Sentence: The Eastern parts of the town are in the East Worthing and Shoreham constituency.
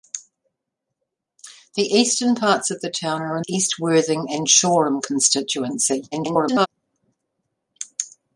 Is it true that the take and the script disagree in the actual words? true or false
true